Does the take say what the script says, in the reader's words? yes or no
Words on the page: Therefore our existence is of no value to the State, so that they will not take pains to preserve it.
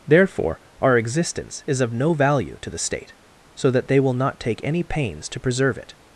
no